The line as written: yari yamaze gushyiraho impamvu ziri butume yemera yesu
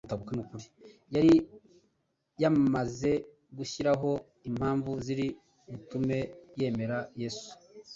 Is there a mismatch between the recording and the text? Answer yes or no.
no